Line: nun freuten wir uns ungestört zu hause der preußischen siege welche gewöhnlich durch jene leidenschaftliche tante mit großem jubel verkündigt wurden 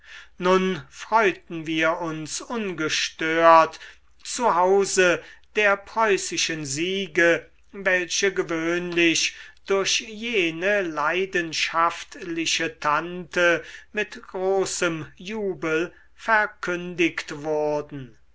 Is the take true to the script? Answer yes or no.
yes